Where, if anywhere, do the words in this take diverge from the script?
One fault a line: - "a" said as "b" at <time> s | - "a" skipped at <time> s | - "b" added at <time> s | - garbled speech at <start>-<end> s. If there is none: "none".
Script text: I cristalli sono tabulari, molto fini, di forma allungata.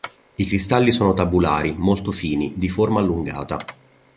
none